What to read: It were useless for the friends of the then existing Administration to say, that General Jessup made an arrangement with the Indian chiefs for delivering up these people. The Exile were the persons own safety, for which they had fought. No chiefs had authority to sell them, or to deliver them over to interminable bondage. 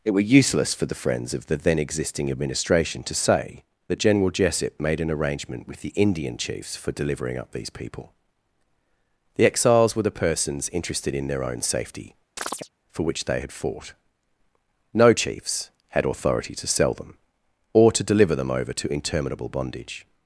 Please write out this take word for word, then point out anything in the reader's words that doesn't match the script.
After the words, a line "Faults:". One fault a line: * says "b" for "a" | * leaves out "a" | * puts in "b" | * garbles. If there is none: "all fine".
It were useless for the friends of the then existing Administration to say, that General Jessup made an arrangement with the Indian chiefs for delivering up these people. The Exiles were the persons interested in their own safety, for which they had fought. No chiefs had authority to sell them, or to deliver them over to interminable bondage.
Faults:
* says "Exiles" for "Exile"
* puts in "interested in their"